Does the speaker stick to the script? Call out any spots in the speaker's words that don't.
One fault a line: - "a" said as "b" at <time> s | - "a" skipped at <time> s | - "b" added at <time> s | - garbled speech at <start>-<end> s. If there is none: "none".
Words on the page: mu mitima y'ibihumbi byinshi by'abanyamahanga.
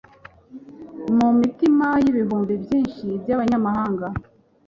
none